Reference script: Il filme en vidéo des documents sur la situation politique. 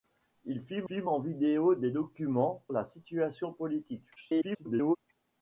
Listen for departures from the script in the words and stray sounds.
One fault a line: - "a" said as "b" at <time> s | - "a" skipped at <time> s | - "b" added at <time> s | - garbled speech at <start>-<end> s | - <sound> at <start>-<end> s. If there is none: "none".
- "filme" added at 0.8 s
- "sur" skipped at 2.6 s
- garbled speech at 4.2-5.0 s